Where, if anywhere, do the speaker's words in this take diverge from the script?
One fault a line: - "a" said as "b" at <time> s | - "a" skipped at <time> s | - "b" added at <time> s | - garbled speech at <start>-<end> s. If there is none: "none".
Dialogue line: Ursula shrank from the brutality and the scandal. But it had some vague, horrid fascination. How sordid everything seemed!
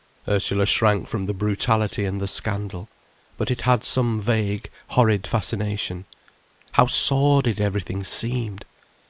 none